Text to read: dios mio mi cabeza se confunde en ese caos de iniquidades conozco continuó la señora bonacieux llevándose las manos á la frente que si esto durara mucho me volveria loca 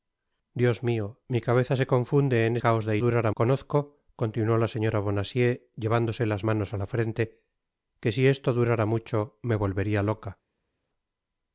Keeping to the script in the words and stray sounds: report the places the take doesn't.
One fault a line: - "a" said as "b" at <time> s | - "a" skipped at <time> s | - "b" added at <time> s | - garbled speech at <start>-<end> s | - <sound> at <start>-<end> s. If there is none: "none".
- "ese" skipped at 2.5 s
- "iniquidades" said as "durara" at 3.0 s